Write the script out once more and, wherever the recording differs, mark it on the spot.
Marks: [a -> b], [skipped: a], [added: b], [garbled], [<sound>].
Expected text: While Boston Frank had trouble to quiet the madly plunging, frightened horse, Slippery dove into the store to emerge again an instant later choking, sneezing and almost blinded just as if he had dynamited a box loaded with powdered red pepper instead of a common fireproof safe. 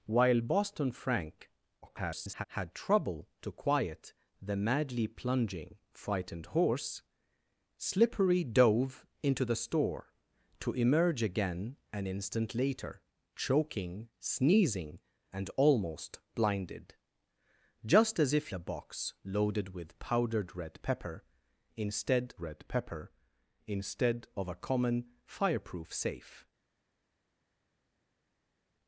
While Boston Frank [garbled] had trouble to quiet the madly plunging, frightened horse, Slippery dove into the store to emerge again an instant later choking, sneezing and almost blinded just as if [skipped: he had dynamited] a box loaded with powdered red pepper instead [added: red pepper instead] of a common fireproof safe.